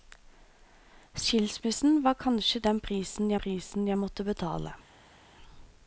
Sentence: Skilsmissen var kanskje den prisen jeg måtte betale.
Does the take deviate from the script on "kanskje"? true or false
false